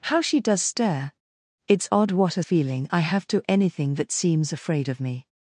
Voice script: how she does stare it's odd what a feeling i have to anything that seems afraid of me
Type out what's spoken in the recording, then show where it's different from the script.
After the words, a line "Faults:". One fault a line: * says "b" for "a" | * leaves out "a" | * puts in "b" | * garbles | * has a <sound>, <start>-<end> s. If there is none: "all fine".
how she does stare it's odd what a feeling i have to anything that seems afraid of me
Faults:
all fine